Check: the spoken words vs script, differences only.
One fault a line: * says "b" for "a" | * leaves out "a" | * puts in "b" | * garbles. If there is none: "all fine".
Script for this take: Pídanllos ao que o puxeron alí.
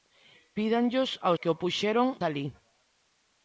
all fine